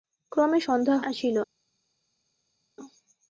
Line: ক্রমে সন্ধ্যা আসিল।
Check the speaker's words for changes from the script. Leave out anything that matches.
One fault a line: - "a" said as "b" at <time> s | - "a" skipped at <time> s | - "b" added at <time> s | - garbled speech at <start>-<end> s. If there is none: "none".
none